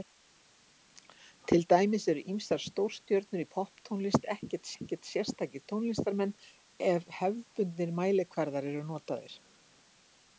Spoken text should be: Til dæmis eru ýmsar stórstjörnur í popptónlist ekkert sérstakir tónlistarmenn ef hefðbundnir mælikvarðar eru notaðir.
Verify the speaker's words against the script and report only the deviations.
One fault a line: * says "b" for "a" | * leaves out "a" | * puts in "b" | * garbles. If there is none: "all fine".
* puts in "ekkert"